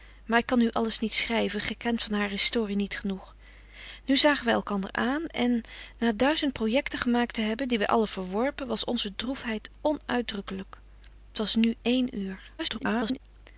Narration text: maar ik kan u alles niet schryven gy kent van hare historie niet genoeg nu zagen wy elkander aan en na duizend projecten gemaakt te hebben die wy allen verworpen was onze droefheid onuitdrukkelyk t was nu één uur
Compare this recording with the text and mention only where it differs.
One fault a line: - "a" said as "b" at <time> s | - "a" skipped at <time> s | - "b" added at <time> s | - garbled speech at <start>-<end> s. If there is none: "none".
- garbled speech at 12.6-13.2 s